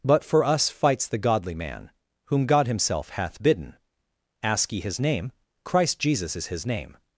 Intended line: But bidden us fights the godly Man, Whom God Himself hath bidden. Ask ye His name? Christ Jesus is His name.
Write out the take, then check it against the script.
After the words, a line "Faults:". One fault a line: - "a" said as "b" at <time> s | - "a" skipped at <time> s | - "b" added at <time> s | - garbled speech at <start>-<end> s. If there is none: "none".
But for us fights the godly Man, Whom God Himself hath bidden. Ask ye His name? Christ Jesus is His name.
Faults:
- "bidden" said as "for" at 0.2 s